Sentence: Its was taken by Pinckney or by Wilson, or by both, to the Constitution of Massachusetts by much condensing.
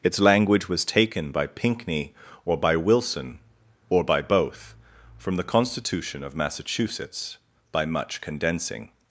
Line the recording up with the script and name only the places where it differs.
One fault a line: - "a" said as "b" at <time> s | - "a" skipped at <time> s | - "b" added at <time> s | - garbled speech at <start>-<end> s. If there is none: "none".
- "language" added at 0.2 s
- "to" said as "from" at 5.2 s